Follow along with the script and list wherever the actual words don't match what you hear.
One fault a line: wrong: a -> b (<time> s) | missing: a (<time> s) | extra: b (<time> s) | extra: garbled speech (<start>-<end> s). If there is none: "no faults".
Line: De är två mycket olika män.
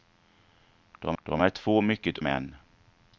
extra: de (1.2 s)
missing: olika (2.2 s)